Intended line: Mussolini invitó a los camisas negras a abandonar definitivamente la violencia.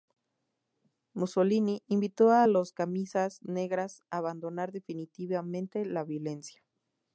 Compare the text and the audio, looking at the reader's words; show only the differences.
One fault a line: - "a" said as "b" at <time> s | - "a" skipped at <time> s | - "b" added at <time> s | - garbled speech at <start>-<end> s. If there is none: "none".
none